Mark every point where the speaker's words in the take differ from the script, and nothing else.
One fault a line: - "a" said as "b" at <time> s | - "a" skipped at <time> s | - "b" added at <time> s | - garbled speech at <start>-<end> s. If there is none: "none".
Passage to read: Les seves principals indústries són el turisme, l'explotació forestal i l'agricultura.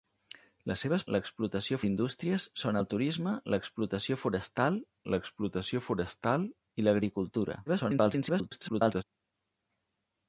- "principals" said as "l'explotació" at 1.2 s
- "l'explotació forestal" added at 5.1 s
- garbled speech at 7.7-9.0 s